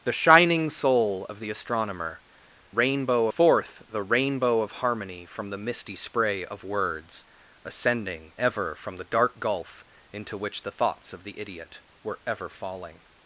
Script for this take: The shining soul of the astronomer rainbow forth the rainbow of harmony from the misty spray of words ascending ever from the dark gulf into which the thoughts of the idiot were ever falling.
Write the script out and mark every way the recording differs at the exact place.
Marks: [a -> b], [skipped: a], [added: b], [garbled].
The shining soul of the astronomer rainbow forth the rainbow of harmony from the misty spray of words ascending ever from the dark gulf into which the thoughts of the idiot were ever falling.